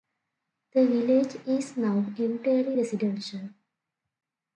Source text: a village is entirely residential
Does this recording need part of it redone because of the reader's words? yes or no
yes